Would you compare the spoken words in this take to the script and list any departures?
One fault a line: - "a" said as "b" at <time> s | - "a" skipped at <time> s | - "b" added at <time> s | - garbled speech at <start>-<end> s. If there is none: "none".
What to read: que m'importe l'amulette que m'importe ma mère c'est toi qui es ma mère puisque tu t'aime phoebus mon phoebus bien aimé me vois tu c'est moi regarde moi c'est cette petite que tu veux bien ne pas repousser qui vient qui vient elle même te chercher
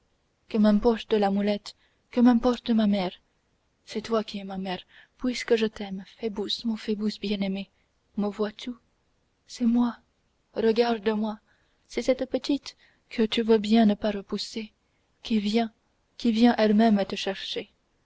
- "tu" said as "je" at 5.5 s